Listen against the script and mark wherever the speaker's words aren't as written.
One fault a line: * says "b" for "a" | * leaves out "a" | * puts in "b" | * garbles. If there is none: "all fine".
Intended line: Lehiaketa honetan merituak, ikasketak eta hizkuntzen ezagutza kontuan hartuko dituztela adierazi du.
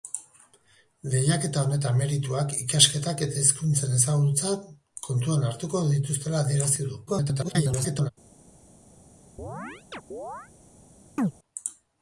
* garbles